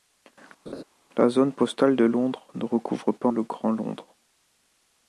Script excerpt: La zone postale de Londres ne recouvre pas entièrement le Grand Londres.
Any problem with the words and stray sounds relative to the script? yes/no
yes